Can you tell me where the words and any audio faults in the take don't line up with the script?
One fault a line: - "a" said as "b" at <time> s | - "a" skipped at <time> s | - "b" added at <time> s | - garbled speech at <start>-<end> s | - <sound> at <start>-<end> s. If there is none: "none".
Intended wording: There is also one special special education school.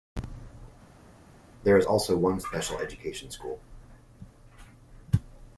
- "special" skipped at 2.8 s